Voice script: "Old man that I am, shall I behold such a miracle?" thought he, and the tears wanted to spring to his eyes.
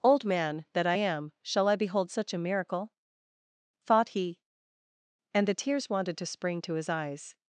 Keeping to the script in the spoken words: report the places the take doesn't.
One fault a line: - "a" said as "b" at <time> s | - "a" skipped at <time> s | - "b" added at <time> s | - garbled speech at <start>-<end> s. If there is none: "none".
none